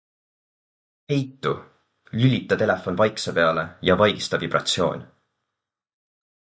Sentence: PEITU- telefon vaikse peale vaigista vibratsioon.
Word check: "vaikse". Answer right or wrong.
right